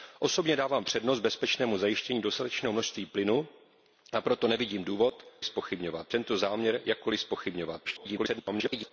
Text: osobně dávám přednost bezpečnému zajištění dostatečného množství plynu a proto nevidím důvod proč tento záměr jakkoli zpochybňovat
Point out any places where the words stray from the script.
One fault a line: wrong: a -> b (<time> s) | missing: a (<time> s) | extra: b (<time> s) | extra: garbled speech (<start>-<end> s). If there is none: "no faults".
wrong: proč -> zpochybňovat (5.4 s)
extra: garbled speech (7.8-8.9 s)